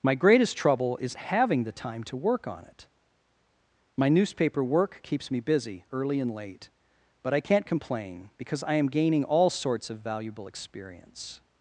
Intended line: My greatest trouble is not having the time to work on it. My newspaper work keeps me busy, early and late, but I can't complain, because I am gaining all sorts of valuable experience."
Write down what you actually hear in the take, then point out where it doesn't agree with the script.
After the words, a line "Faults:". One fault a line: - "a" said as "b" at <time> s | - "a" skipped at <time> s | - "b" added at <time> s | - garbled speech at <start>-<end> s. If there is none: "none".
My greatest trouble is having the time to work on it. My newspaper work keeps me busy, early and late, but I can't complain, because I am gaining all sorts of valuable experience."
Faults:
- "not" skipped at 1.1 s